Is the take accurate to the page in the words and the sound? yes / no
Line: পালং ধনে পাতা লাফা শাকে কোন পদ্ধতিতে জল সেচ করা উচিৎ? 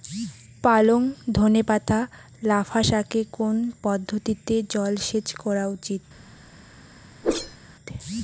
no